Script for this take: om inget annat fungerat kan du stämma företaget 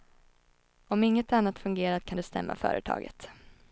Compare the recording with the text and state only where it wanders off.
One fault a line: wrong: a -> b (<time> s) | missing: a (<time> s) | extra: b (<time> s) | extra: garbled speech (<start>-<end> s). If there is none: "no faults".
no faults